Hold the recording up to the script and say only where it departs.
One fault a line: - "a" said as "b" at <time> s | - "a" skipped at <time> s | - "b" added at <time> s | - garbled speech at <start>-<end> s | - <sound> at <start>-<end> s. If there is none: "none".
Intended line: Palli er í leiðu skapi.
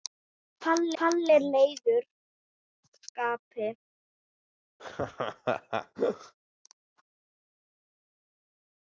- "palli" added at 1.0 s
- laugh at 4.8-6.3 s